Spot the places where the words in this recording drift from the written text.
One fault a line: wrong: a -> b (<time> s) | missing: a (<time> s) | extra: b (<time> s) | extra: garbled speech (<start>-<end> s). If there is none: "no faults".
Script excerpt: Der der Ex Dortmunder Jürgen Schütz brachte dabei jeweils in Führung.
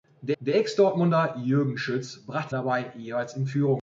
no faults